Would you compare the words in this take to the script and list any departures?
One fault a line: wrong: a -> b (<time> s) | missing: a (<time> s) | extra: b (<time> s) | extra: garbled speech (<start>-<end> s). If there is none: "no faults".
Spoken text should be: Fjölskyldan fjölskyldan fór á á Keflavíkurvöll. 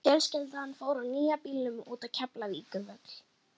missing: fjölskyldan (0.7 s)
extra: nýja bílnum út (1.1 s)